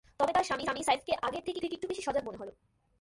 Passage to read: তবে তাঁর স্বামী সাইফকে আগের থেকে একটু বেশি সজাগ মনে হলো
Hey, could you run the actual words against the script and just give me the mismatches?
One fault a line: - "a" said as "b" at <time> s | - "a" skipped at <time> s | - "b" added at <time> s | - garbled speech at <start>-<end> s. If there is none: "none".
- "স্বামী" added at 0.6 s
- "থেকে" added at 1.6 s